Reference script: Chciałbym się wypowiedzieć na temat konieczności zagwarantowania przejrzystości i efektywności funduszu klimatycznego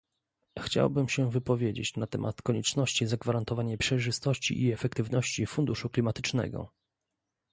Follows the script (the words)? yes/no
yes